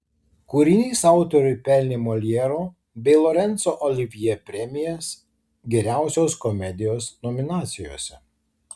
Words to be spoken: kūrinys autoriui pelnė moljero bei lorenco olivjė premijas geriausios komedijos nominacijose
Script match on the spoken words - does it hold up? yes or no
yes